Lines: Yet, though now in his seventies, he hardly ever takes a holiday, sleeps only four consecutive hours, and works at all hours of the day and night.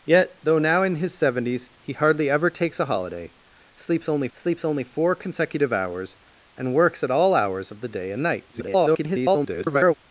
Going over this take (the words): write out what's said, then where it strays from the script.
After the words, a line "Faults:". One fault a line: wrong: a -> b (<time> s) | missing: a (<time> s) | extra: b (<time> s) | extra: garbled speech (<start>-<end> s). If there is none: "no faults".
Yet, though now in his seventies, he hardly ever takes a holiday, sleeps only sleeps only four consecutive hours, and works at all hours of the day and night. [garbled]
Faults:
extra: sleeps only (4.3 s)
extra: garbled speech (8.5-9.9 s)